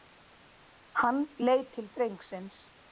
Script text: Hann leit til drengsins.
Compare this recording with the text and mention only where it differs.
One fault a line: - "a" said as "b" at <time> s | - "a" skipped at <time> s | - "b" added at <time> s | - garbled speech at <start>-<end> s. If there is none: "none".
none